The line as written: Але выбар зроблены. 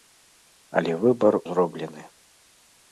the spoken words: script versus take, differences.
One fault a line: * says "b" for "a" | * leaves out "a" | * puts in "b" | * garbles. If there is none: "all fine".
all fine